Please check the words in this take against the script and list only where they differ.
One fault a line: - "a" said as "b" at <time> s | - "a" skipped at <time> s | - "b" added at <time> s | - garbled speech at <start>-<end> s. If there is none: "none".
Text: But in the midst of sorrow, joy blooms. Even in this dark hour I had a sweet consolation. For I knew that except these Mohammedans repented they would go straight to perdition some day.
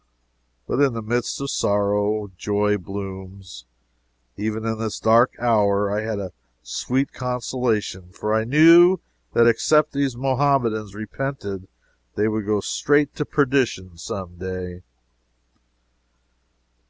none